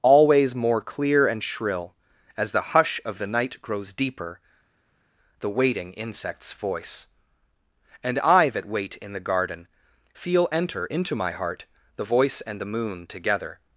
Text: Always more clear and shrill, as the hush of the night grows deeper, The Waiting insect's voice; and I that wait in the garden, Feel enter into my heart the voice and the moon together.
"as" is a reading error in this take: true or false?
false